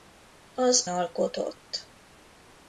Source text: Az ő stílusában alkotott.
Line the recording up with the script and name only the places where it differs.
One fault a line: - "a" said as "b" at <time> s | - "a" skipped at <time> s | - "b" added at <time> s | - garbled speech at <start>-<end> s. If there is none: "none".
- "ő stílusában" skipped at 0.9 s